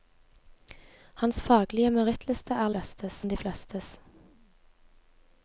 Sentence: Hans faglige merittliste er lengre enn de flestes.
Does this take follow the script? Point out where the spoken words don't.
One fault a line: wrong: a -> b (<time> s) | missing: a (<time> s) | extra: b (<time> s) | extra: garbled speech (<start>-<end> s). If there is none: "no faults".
wrong: lengre -> flestes (2.7 s)